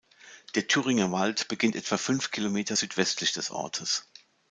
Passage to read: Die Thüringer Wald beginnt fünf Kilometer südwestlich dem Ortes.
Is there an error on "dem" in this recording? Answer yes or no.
yes